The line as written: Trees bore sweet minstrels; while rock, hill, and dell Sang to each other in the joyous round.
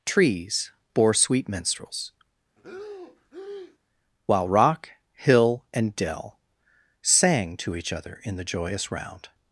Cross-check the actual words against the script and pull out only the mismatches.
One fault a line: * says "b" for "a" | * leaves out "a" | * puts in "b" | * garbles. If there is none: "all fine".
all fine